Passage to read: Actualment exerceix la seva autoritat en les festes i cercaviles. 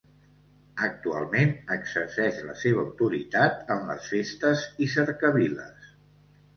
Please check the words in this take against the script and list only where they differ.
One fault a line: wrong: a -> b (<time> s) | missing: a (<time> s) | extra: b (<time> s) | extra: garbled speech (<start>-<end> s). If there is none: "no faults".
no faults